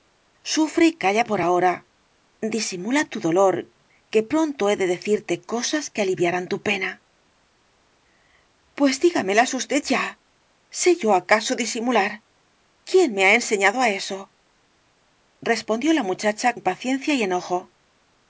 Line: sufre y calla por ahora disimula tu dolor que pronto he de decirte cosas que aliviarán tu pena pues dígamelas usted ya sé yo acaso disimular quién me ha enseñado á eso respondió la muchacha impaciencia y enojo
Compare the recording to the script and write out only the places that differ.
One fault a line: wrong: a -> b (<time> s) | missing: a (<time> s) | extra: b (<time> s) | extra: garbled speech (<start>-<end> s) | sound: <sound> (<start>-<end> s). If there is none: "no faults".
no faults